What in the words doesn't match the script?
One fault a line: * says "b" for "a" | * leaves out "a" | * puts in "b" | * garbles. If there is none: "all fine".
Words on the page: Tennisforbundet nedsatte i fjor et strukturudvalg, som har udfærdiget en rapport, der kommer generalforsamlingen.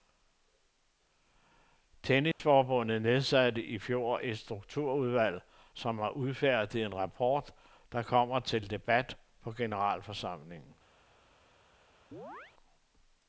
* puts in "til debat på"